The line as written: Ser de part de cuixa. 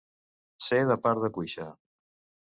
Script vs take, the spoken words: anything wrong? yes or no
no